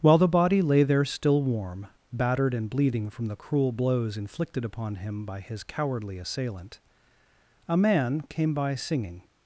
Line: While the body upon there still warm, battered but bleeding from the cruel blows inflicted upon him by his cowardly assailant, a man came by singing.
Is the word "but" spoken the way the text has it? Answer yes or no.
no